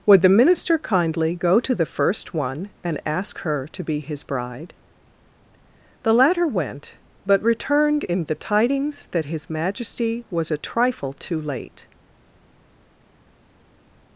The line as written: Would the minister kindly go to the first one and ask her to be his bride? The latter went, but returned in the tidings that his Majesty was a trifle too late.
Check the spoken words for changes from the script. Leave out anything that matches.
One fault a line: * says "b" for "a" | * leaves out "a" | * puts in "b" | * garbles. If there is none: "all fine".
all fine